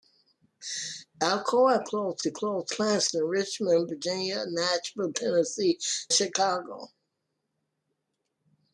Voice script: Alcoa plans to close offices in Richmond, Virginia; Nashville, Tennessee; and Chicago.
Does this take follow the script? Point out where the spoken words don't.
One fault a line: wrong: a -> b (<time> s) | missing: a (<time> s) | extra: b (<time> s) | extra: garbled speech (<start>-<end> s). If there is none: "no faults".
wrong: plans -> close (1.8 s)
wrong: offices -> plans (2.7 s)
missing: and (5.8 s)